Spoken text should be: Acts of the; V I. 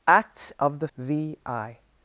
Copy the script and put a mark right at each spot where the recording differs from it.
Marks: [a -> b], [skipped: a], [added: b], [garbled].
Acts of the; V I.